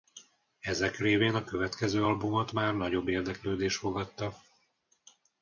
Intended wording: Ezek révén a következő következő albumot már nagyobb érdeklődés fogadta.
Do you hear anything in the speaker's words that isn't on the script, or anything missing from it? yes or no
yes